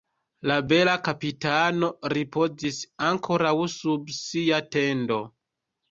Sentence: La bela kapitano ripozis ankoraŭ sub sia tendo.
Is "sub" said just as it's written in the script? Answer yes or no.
yes